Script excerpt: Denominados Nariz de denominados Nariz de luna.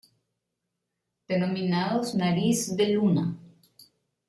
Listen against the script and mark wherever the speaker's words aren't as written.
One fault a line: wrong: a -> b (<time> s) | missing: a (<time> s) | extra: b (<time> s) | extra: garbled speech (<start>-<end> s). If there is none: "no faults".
missing: denominados Nariz de (2.9 s)